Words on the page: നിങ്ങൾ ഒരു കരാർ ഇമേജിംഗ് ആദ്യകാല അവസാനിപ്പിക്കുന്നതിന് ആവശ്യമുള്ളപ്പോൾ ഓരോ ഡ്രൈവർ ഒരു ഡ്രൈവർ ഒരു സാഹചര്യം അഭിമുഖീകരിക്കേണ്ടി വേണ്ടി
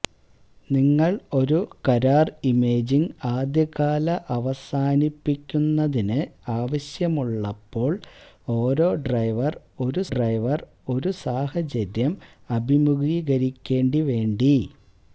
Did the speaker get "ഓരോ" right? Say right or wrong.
right